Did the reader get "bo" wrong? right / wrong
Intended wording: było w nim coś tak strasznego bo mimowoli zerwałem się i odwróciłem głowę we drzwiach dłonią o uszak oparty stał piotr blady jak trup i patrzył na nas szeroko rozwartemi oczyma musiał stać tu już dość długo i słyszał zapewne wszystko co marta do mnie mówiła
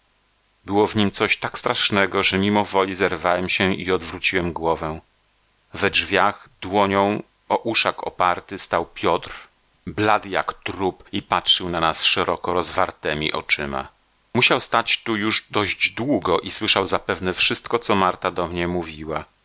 wrong